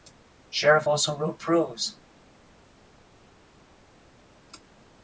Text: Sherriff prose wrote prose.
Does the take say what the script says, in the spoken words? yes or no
no